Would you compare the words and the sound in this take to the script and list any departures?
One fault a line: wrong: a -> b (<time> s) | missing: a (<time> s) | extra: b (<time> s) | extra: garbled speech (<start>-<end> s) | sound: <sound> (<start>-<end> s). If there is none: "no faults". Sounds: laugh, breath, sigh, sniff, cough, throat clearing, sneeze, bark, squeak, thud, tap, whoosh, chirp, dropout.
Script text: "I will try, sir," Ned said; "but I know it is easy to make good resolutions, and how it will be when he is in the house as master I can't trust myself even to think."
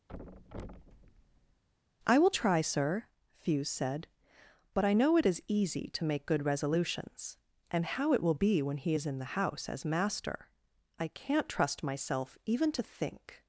sound: thud (0.1-1.6 s)
wrong: Ned -> Fuse (3.3 s)